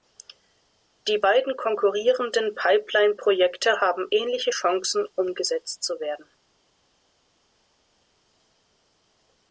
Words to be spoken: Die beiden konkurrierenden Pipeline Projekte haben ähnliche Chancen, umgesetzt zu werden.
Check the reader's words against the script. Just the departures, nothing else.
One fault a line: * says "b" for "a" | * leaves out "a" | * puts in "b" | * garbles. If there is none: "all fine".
all fine